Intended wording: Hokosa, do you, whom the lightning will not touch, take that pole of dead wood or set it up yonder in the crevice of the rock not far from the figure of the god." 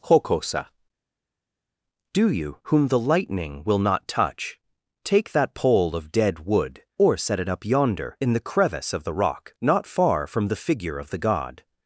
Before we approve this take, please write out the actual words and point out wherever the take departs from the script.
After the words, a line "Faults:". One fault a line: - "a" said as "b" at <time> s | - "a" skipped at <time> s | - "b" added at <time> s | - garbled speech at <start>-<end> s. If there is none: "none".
Hokosa, do you, whom the lightning will not touch, take that pole of dead wood or set it up yonder in the crevice of the rock not far from the figure of the god."
Faults:
none